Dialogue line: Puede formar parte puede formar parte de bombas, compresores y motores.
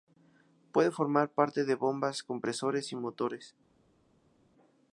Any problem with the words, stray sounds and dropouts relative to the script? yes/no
yes